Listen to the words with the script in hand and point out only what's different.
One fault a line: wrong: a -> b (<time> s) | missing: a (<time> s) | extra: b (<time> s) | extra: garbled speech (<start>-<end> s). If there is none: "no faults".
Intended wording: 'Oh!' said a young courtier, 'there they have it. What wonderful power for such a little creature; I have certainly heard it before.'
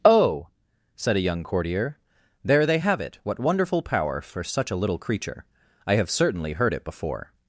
no faults